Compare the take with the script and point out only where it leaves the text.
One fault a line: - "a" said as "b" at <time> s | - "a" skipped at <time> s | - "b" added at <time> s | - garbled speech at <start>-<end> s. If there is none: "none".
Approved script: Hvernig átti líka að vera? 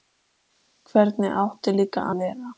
none